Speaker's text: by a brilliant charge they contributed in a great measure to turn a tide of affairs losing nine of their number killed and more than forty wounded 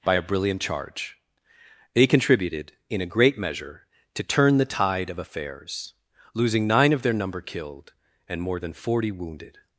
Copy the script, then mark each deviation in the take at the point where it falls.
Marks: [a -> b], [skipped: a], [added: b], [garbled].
by a brilliant charge they contributed in a great measure to turn [a -> the] tide of affairs losing nine of their number killed and more than forty wounded